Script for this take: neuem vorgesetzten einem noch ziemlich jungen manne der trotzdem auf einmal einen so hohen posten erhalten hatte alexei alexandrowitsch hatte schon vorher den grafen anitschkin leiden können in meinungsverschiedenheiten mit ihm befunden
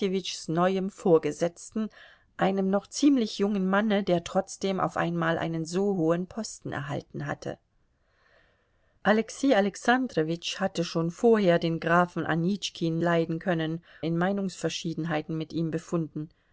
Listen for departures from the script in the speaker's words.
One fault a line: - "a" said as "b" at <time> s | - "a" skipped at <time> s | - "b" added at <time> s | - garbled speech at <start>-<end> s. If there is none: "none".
none